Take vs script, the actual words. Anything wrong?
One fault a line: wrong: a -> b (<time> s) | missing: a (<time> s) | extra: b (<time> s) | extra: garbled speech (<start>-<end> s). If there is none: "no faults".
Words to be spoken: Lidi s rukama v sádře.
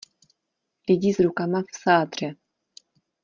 no faults